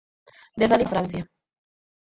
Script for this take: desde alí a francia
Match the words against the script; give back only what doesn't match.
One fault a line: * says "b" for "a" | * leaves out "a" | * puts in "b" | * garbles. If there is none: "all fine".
all fine